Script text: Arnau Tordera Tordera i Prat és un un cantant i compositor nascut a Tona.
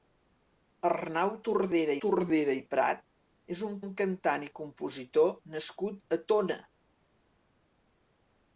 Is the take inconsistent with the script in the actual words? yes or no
no